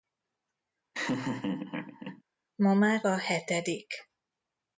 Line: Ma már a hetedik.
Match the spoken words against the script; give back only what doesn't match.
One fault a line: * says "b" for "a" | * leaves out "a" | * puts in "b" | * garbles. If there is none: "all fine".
all fine